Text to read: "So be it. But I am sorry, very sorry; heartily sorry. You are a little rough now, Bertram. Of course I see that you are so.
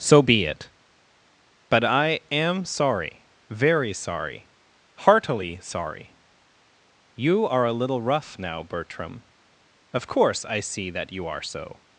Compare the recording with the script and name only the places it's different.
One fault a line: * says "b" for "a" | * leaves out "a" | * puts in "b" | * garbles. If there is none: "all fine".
all fine